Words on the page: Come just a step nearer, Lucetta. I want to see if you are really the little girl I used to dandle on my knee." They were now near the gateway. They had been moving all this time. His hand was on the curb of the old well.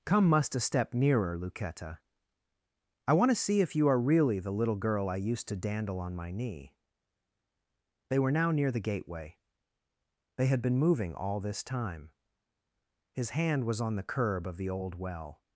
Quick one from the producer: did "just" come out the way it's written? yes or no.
no